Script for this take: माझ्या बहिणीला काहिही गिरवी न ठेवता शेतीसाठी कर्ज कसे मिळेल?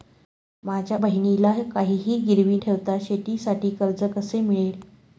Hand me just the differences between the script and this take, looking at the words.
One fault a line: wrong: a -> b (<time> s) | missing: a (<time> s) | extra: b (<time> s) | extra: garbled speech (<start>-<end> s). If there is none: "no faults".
missing: न (2.6 s)